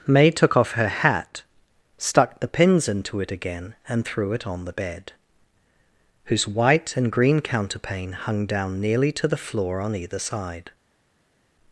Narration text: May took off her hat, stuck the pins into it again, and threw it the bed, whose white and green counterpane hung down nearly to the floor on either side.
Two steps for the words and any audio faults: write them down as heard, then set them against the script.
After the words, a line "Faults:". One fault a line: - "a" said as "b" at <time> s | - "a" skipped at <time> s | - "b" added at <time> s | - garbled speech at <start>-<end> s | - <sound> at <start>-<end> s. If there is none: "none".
May took off her hat, stuck the pins into it again, and threw it on the bed, whose white and green counterpane hung down nearly to the floor on either side.
Faults:
- "on" added at 4.5 s